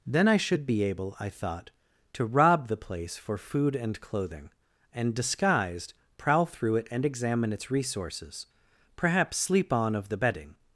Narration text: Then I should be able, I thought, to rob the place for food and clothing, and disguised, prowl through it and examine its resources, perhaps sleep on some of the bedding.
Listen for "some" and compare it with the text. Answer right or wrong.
wrong